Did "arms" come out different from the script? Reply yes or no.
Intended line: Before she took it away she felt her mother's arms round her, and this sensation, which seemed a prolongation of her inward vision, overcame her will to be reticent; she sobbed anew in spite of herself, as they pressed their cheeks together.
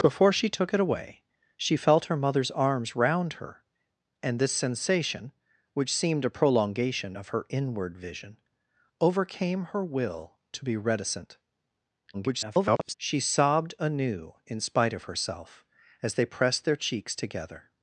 no